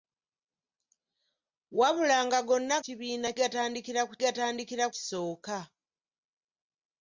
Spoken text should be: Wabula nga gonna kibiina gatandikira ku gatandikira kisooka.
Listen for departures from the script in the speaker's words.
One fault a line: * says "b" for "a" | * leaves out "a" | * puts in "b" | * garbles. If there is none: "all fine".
all fine